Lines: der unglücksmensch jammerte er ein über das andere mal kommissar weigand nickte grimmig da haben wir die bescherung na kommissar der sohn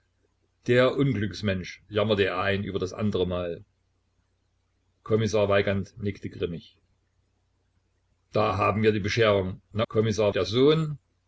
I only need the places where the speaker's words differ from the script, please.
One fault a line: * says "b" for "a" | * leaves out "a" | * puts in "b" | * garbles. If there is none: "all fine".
all fine